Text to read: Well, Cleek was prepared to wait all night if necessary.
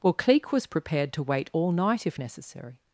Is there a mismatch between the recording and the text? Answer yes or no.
no